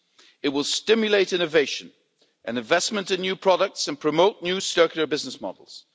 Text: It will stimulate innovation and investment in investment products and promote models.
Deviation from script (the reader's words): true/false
true